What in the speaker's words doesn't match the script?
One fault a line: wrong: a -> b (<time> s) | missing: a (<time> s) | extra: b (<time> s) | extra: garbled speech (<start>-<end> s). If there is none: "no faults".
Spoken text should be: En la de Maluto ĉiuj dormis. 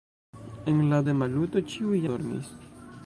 no faults